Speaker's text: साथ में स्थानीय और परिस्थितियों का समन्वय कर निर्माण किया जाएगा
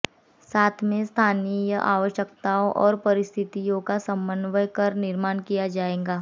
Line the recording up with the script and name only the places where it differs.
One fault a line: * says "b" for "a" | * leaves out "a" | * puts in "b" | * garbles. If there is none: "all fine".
* puts in "आवश्यकताओं"